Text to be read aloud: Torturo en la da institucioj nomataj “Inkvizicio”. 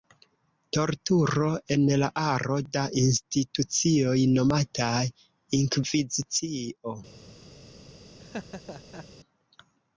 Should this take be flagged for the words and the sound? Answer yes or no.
yes